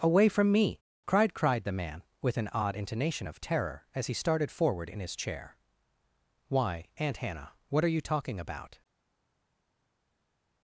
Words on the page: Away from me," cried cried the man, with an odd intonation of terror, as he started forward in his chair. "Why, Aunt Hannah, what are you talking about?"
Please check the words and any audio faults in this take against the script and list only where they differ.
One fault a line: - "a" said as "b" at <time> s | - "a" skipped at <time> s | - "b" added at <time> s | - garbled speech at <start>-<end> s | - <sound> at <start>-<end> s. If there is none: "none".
none